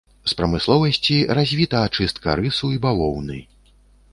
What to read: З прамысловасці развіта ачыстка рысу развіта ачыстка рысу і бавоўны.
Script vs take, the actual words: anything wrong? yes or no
yes